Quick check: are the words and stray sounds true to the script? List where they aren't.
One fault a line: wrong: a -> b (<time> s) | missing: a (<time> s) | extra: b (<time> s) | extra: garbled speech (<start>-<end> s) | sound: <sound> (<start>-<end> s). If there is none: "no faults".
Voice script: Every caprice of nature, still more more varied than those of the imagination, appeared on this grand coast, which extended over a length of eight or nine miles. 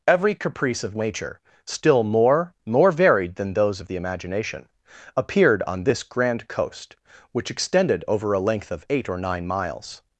no faults